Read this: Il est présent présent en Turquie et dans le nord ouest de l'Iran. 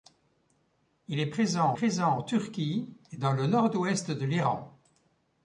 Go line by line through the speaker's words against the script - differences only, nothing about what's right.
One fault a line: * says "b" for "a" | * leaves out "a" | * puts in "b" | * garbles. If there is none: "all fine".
all fine